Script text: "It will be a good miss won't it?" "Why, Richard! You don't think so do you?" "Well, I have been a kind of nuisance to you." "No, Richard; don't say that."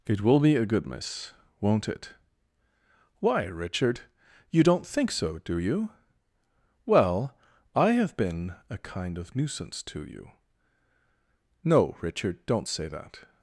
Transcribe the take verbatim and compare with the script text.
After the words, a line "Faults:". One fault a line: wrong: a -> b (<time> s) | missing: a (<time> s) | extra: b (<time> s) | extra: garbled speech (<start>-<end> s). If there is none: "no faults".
"It will be a good miss won't it?" "Why, Richard! You don't think so do you?" "Well, I have been a kind of nuisance to you." "No, Richard; don't say that."
Faults:
no faults